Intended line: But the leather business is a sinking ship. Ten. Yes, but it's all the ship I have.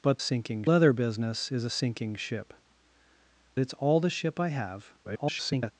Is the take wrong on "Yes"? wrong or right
wrong